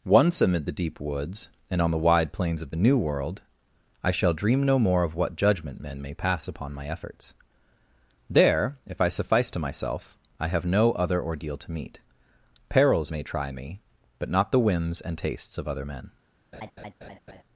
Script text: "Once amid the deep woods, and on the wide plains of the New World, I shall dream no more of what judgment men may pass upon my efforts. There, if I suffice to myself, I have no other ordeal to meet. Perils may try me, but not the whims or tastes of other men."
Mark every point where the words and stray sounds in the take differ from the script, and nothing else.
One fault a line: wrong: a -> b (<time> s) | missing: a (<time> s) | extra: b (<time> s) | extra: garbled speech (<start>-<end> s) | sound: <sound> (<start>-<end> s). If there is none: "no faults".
wrong: or -> and (15.0 s)
sound: laugh (16.5-17.4 s)